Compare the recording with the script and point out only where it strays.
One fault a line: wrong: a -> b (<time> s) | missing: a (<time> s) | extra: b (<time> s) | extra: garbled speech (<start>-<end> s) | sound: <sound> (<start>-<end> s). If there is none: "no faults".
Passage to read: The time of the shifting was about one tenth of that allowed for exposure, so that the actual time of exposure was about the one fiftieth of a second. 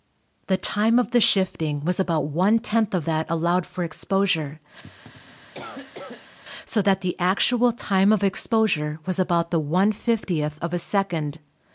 sound: cough (4.8-6.4 s)